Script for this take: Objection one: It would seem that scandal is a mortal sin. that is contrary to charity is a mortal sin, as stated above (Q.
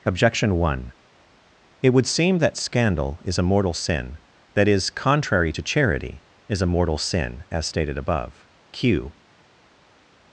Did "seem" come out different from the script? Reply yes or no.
no